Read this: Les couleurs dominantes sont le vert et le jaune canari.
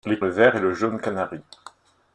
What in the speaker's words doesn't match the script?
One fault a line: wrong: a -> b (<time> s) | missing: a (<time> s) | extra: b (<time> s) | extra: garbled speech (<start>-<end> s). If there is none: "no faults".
missing: couleurs dominantes sont (0.2 s)